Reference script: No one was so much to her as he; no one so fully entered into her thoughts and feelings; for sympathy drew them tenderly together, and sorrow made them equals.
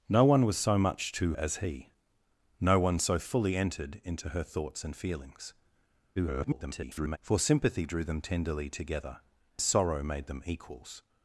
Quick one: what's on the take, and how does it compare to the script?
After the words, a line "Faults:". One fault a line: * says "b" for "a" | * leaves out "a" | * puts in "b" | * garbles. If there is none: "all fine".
No one was so much to as he; no one so fully entered into her thoughts and feelings; [garbled] for sympathy drew them tenderly together, sorrow made them equals.
Faults:
* leaves out "her"
* garbles
* leaves out "and"